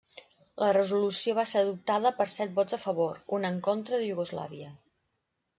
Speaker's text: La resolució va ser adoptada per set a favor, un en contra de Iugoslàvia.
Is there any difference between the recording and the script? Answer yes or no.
yes